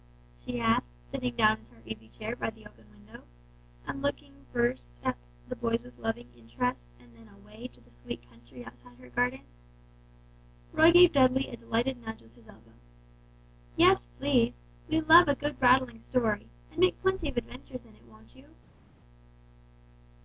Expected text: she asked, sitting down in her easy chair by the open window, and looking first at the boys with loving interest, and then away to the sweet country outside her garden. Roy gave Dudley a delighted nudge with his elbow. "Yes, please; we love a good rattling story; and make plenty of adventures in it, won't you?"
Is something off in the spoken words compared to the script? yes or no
no